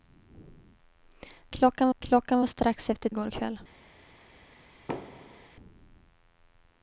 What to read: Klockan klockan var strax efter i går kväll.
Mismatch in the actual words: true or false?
false